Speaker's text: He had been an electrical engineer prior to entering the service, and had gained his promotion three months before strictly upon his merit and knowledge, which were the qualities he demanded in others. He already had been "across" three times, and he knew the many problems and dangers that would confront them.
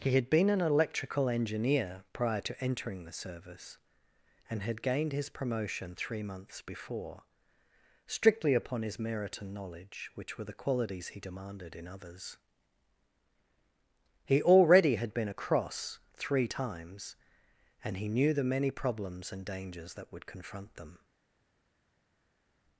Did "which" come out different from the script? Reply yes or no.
no